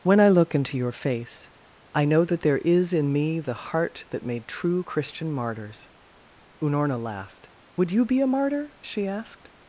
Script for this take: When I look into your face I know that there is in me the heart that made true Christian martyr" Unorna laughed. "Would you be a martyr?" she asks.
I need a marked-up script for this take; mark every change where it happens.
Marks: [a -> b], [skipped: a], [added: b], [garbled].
When I look into your face I know that there is in me the heart that made true Christian [martyr" -> martyrs] Unorna laughed. "Would you be a martyr?" she [asks. -> asked]